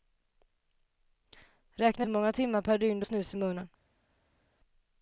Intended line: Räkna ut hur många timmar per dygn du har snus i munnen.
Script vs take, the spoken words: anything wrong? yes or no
yes